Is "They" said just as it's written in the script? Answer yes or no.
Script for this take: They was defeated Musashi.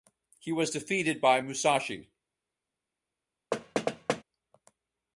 no